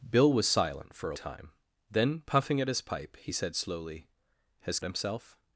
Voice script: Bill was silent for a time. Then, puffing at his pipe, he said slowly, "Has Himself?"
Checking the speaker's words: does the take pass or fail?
pass